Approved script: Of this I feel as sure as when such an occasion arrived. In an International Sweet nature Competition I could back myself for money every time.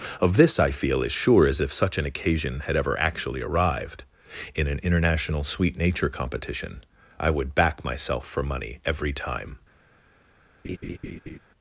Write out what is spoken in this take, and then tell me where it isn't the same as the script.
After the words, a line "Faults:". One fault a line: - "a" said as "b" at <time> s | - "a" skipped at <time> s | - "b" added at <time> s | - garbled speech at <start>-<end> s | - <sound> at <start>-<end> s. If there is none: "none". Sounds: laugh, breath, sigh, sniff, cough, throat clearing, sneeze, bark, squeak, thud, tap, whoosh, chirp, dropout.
Of this I feel as sure as if such an occasion had ever actually arrived. In an International Sweet nature Competition I would back myself for money every time.
Faults:
- "when" said as "if" at 1.6 s
- "had ever actually" added at 2.6 s
- "could" said as "would" at 7.3 s
- laugh at 10.6-11.4 s